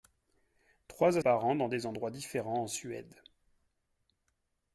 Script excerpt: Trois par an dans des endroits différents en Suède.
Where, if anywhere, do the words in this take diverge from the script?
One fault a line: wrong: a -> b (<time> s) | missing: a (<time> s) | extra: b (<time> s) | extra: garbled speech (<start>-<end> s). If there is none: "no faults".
no faults